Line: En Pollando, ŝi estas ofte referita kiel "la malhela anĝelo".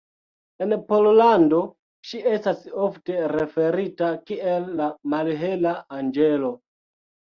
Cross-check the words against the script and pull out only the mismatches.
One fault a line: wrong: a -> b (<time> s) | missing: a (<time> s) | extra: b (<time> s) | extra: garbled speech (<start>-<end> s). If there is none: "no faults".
no faults